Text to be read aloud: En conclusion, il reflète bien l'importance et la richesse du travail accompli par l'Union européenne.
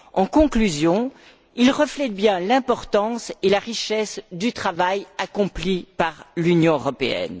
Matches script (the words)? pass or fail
pass